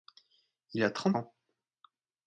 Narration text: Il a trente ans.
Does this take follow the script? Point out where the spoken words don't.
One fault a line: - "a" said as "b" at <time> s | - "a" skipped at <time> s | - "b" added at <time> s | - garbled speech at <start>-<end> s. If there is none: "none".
none